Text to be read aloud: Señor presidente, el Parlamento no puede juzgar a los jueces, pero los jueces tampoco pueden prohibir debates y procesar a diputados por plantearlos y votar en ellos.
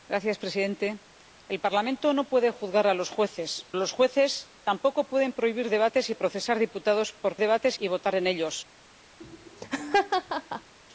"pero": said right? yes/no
no